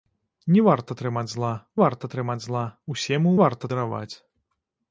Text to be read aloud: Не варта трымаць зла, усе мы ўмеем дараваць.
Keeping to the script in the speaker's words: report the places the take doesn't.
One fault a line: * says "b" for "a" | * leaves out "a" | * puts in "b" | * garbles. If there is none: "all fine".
* puts in "варта трымаць зла"
* says "варта" for "ўмеем"